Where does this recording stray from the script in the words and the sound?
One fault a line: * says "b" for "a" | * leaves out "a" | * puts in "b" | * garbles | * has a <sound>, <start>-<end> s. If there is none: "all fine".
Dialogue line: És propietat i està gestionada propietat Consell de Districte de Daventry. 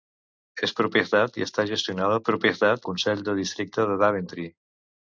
all fine